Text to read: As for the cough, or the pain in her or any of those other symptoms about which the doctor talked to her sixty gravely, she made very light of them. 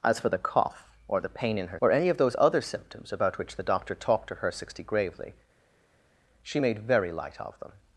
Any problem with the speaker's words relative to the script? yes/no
no